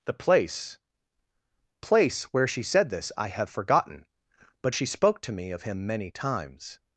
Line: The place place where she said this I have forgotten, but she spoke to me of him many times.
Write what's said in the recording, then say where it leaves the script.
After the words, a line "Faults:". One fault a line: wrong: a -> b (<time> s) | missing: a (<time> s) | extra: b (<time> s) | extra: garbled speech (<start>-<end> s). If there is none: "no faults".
The place place where she said this I have forgotten, but she spoke to me of him many times.
Faults:
no faults